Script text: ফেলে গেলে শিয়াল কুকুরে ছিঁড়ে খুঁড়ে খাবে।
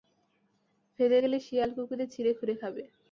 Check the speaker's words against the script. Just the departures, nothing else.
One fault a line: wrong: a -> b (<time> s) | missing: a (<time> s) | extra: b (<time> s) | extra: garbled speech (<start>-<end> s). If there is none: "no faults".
no faults